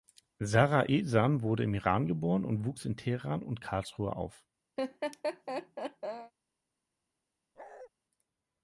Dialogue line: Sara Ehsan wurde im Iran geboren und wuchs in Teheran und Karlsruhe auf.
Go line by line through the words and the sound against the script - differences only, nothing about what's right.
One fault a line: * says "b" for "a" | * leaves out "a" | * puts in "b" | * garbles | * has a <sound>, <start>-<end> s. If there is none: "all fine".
* has a laugh, 4.8-6.3 s
* has a bark, 7.6-7.9 s